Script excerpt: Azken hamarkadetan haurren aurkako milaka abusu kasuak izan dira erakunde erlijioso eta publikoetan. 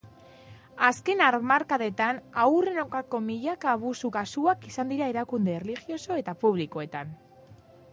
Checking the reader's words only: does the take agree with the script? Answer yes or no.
yes